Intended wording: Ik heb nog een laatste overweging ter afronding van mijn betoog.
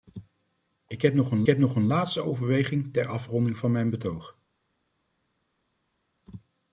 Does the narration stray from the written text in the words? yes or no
yes